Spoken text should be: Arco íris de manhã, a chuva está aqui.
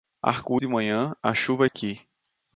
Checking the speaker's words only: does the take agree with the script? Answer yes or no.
no